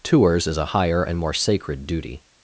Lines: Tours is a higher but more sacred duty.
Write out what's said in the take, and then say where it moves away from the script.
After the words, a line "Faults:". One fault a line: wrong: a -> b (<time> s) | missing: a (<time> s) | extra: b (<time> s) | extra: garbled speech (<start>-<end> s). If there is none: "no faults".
Tours is a higher and more sacred duty.
Faults:
wrong: but -> and (1.0 s)